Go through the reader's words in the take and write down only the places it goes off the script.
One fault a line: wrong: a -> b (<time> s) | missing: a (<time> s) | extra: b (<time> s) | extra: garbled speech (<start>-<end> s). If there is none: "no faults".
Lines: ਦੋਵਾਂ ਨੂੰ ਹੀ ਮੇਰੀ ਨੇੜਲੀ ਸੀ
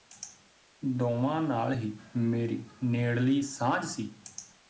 wrong: ਨੂੰ -> ਨਾਲ (1.4 s)
extra: ਸਾਂਝ (3.4 s)